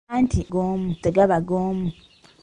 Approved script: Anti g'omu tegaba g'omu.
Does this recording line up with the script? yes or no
yes